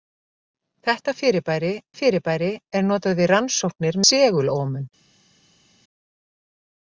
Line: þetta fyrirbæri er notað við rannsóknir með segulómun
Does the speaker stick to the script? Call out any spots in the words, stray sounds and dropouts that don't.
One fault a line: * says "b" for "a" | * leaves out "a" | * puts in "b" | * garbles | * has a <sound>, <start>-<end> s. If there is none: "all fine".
* puts in "fyrirbæri"
* leaves out "með"